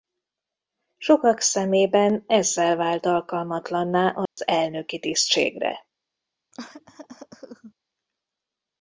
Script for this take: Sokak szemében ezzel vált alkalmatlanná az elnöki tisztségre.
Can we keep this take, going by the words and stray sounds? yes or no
no